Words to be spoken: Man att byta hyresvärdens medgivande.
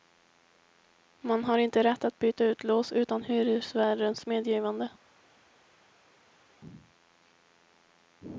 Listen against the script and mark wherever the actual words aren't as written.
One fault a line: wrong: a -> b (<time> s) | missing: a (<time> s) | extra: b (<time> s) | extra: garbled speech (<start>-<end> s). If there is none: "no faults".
extra: har inte rätt (1.4 s)
extra: ut lås utan (2.5 s)